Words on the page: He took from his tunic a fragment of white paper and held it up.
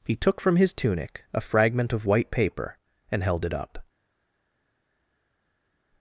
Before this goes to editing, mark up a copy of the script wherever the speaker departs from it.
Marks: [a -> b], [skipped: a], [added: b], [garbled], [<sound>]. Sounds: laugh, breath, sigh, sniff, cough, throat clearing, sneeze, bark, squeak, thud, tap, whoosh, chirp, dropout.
He took from his tunic a fragment of white paper and held it up.